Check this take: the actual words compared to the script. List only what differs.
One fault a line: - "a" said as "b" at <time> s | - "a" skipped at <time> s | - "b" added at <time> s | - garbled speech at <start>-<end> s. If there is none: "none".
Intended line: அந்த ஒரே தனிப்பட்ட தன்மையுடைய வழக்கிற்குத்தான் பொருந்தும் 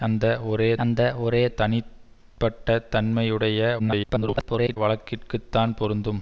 - "அந்த ஒரே" added at 0.8 s
- garbled speech at 3.8-4.8 s